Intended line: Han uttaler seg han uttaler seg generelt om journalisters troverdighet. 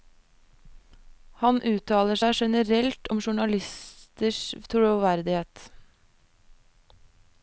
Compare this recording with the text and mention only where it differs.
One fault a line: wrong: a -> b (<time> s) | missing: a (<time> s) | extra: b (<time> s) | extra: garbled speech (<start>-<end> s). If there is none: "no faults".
missing: han uttaler seg (2.4 s)